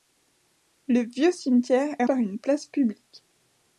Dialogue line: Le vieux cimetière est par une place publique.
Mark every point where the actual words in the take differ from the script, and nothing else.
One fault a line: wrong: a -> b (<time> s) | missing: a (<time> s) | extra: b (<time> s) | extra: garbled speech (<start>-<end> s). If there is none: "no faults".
no faults